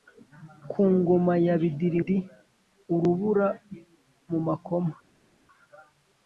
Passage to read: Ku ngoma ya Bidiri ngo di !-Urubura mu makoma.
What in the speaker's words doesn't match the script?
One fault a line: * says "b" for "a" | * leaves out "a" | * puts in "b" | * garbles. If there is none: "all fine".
* leaves out "ngo"